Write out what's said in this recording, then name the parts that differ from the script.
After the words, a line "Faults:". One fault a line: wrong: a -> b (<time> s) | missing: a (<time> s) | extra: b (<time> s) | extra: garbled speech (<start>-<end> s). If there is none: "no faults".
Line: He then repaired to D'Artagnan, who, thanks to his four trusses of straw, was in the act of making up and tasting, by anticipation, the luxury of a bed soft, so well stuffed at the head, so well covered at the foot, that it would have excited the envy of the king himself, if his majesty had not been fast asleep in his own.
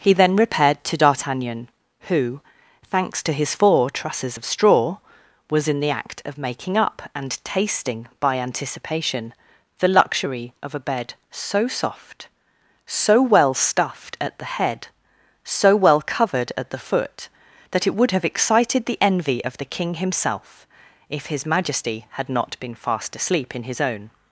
He then repaired to D'Artagnan, who, thanks to his four trusses of straw, was in the act of making up and tasting, by anticipation, the luxury of a bed so soft, so well stuffed at the head, so well covered at the foot, that it would have excited the envy of the king himself, if his majesty had not been fast asleep in his own.
Faults:
extra: so (11.3 s)